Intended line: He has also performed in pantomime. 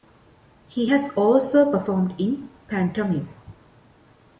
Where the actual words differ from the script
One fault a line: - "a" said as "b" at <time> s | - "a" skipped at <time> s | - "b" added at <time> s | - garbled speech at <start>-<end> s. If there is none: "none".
none